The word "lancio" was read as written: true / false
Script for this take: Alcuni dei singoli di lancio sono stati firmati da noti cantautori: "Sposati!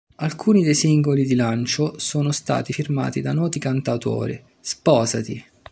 true